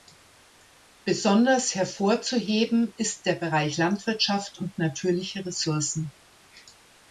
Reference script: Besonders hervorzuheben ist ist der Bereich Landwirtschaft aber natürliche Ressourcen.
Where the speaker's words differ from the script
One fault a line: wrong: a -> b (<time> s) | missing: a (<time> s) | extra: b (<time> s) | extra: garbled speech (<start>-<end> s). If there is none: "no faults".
missing: ist (3.3 s)
wrong: aber -> und (4.6 s)